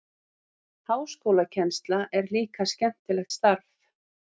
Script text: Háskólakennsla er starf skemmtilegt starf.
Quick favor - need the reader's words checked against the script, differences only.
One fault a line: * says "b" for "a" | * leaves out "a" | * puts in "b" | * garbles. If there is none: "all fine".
* says "líka" for "starf"